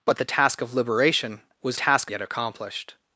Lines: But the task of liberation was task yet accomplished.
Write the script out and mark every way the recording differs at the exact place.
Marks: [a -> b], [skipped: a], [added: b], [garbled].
But the task of liberation was task yet accomplished.